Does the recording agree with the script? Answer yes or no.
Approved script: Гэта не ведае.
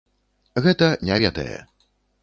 yes